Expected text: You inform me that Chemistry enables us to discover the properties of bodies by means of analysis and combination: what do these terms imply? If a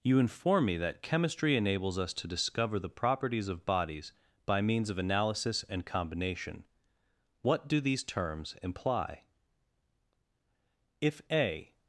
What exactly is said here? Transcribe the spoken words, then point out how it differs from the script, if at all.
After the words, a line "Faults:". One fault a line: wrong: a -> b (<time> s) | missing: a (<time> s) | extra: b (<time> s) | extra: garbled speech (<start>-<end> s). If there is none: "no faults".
You inform me that Chemistry enables us to discover the properties of bodies by means of analysis and combination: what do these terms imply? If a
Faults:
no faults